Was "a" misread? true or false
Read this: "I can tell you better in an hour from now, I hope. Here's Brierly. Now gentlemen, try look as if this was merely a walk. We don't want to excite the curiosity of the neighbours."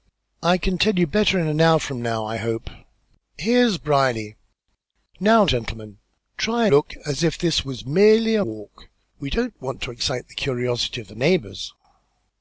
false